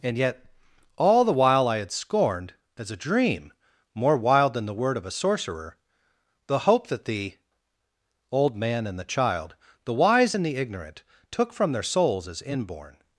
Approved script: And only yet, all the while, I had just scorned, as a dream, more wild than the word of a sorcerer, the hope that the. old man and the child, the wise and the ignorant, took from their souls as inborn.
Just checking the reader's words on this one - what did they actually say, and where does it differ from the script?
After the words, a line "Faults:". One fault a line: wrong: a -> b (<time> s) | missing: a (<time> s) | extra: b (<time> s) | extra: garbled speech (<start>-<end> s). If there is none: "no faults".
And yet, all the while, I had scorned, as a dream, more wild than the word of a sorcerer, the hope that the. old man and the child, the wise and the ignorant, took from their souls as inborn.
Faults:
missing: only (0.2 s)
missing: just (1.9 s)